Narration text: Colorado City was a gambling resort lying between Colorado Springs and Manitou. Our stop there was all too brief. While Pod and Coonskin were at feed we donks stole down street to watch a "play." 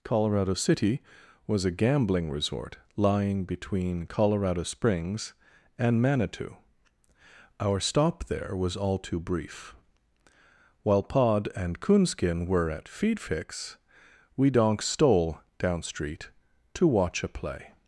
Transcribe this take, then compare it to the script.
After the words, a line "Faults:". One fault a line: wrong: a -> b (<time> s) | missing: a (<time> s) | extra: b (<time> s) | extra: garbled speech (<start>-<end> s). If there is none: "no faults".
Colorado City was a gambling resort lying between Colorado Springs and Manitou. Our stop there was all too brief. While Pod and Coonskin were at feed fix we donks stole down street to watch a "play."
Faults:
extra: fix (13.2 s)